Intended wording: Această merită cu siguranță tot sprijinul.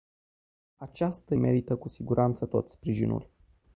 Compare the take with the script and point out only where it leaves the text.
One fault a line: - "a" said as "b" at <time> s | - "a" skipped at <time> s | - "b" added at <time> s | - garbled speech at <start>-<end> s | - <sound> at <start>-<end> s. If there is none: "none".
none